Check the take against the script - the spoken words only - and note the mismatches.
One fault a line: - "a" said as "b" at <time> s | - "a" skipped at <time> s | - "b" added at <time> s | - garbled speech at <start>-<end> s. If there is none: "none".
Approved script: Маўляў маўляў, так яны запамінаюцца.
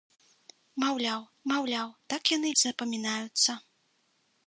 none